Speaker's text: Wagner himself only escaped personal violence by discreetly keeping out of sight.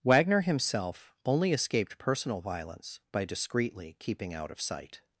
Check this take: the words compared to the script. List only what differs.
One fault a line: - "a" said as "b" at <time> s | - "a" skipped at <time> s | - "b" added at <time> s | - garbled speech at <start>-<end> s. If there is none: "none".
none